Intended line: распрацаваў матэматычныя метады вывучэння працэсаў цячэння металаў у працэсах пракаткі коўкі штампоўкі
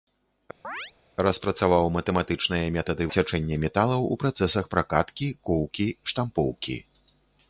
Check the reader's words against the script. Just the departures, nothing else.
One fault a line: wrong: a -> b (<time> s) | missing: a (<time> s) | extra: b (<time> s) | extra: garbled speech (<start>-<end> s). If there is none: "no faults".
missing: вывучэння працэсаў (3.1 s)